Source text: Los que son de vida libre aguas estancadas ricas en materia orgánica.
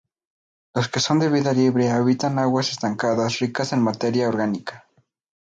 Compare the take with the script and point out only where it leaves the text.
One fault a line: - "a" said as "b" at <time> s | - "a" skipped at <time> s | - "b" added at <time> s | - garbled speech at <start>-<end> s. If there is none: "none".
- "habitan" added at 1.9 s